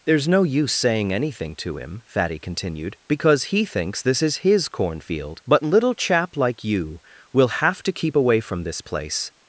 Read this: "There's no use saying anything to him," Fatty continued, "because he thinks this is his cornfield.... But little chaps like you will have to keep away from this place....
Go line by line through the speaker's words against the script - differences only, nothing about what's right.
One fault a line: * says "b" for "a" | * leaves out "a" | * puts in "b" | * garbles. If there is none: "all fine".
* says "chap" for "chaps"